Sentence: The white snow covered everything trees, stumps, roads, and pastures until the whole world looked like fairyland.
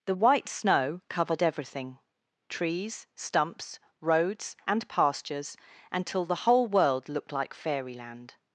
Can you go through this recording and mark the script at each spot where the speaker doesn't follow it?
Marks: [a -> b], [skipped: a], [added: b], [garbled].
The white snow covered everything trees, stumps, roads, and pastures until the whole world looked like fairyland.